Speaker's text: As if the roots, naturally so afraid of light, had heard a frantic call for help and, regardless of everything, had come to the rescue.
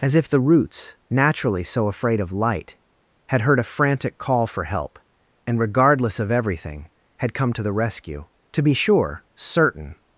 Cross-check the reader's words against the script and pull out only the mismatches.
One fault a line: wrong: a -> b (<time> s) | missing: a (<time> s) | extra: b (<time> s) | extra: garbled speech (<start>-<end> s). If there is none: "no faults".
extra: To be sure certain (8.5 s)